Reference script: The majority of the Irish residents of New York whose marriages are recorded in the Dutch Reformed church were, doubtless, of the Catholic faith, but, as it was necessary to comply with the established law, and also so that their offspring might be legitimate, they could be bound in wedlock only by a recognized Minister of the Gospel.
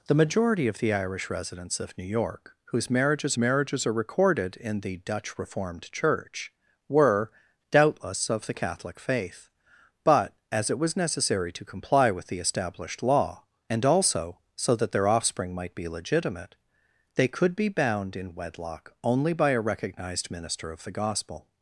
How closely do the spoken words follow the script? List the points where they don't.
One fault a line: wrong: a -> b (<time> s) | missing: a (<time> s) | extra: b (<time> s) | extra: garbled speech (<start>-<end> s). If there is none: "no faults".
extra: marriages (3.4 s)